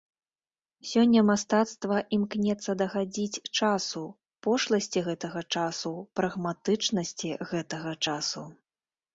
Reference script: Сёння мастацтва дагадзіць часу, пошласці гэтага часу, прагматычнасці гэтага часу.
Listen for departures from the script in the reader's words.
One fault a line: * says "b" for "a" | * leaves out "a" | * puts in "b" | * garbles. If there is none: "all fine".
* puts in "імкнецца"